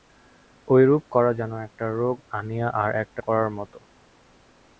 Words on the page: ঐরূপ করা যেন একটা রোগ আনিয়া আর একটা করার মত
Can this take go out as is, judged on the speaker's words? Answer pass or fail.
pass